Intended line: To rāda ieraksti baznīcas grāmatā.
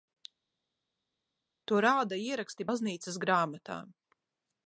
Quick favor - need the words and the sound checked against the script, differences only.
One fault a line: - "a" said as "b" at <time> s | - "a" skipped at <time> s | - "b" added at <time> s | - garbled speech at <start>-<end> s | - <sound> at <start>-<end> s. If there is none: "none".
none